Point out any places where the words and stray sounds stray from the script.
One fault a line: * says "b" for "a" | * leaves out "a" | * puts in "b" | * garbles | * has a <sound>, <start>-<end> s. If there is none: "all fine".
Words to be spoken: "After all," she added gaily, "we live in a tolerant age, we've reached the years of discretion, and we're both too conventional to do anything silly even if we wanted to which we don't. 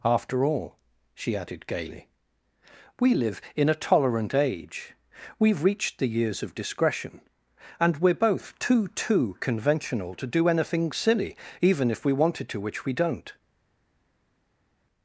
* puts in "too"